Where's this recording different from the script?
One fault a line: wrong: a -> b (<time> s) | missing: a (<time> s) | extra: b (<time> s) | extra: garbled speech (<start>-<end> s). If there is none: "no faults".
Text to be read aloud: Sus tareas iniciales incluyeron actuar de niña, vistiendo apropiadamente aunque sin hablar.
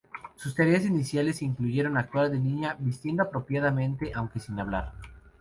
no faults